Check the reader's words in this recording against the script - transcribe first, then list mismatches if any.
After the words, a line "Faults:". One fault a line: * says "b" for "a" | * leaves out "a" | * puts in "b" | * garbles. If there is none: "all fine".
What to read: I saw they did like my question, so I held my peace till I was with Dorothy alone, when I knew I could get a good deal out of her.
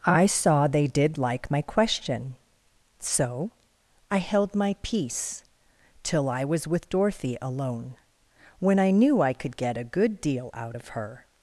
I saw they did like my question, so I held my peace till I was with Dorothy alone, when I knew I could get a good deal out of her.
Faults:
all fine